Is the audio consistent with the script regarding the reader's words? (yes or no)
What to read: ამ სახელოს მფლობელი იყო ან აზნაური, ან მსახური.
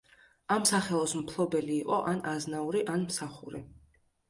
yes